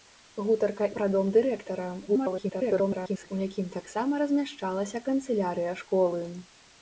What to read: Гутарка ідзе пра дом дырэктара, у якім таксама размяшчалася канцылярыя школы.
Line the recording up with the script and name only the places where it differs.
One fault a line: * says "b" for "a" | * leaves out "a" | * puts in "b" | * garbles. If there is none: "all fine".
* leaves out "ідзе"
* garbles